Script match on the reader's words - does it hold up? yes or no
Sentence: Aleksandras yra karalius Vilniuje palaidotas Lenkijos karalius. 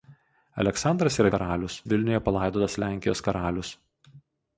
yes